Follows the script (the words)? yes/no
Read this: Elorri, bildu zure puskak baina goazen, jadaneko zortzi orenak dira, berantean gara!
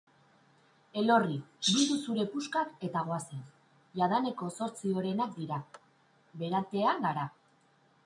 no